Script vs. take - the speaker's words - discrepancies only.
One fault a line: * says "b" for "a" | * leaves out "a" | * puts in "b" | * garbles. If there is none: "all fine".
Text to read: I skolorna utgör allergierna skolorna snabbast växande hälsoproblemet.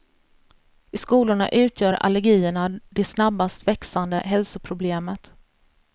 * says "det" for "skolorna"